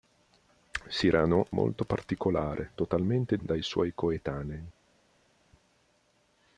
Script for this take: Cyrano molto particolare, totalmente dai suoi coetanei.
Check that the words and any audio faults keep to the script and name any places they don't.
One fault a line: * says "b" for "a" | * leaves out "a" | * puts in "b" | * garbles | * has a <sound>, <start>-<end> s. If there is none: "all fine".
all fine